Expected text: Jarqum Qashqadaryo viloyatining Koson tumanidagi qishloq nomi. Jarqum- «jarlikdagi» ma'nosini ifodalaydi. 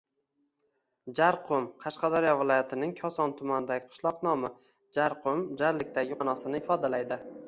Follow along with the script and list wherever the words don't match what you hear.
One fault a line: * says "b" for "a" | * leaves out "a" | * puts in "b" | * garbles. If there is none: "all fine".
all fine